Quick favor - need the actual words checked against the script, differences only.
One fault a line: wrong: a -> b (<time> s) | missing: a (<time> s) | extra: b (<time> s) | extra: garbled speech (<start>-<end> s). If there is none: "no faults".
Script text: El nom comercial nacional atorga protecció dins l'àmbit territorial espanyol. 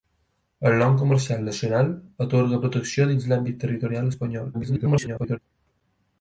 extra: garbled speech (4.5-5.4 s)